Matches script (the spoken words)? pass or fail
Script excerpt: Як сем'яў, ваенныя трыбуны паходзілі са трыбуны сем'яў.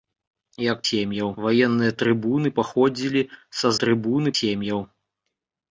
pass